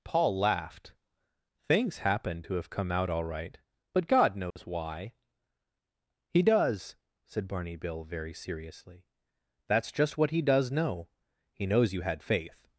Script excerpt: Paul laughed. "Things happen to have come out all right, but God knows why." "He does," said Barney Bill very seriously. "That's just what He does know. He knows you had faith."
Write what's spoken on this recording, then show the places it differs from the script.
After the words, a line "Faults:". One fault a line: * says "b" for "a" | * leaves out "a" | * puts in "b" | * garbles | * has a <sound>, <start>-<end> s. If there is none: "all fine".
Paul laughed. "Things happen to have come out all right, but God knows why." "He does," said Barney Bill very seriously. "That's just what He does know. He knows you had faith."
Faults:
* has a dropout, 4.5-4.6 s